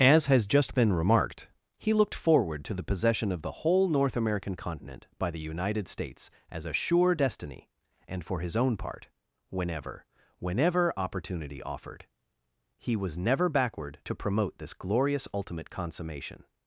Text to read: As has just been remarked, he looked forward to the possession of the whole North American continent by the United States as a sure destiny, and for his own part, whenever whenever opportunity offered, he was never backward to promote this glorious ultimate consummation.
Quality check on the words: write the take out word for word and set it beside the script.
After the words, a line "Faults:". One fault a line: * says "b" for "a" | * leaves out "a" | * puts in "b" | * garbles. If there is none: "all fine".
As has just been remarked, he looked forward to the possession of the whole North American continent by the United States as a sure destiny, and for his own part, whenever whenever opportunity offered, he was never backward to promote this glorious ultimate consummation.
Faults:
all fine